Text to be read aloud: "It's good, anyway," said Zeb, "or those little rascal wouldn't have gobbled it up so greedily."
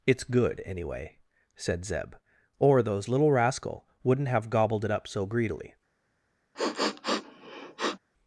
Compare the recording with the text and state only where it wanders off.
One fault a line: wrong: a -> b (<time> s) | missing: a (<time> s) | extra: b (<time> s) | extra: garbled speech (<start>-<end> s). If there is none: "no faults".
no faults